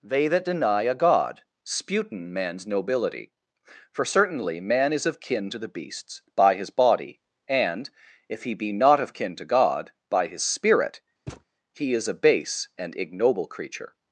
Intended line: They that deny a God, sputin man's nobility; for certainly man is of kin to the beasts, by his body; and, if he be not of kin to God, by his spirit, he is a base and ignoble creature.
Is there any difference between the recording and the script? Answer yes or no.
no